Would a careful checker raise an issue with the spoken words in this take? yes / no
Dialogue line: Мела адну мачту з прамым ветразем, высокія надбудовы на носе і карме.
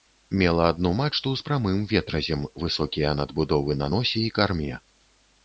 no